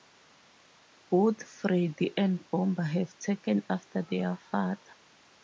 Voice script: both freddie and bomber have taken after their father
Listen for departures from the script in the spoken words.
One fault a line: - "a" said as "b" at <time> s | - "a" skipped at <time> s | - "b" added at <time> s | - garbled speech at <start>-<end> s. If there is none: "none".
none